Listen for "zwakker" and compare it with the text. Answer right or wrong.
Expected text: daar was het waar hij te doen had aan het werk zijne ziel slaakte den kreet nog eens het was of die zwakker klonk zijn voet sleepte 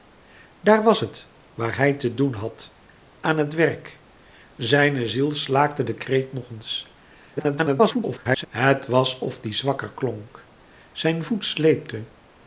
right